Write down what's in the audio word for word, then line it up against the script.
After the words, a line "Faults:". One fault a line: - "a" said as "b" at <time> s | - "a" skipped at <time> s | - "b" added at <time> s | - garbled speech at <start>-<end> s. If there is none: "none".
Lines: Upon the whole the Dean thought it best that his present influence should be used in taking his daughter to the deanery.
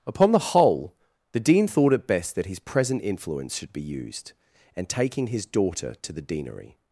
Upon the whole the Dean thought it best that his present influence should be used and taking his daughter to the deanery.
Faults:
- "in" said as "and" at 4.7 s